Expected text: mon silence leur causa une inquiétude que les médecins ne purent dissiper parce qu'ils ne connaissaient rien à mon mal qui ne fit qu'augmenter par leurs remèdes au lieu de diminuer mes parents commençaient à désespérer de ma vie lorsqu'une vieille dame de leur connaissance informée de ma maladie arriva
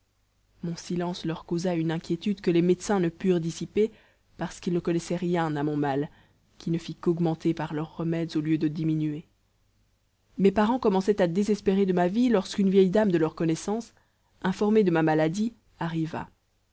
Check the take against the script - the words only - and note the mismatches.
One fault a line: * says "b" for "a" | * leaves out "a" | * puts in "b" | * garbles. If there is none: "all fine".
all fine